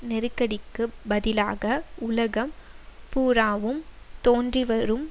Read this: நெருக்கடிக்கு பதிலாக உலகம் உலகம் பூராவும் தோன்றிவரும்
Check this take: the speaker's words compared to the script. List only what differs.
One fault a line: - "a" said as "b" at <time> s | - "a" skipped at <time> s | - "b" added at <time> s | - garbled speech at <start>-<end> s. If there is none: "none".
- "உலகம்" skipped at 2.5 s